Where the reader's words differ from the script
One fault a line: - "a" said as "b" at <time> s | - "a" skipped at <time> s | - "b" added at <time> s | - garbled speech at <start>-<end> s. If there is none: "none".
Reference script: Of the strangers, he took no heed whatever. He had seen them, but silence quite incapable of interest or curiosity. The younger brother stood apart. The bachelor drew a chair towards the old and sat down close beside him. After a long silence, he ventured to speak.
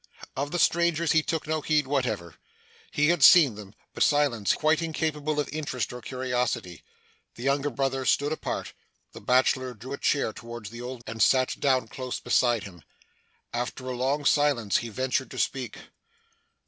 none